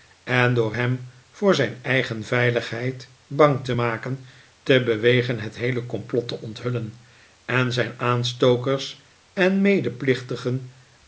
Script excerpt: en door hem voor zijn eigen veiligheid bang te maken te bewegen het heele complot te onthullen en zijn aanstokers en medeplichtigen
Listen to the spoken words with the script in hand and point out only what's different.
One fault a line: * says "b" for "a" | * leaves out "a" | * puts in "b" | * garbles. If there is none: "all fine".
all fine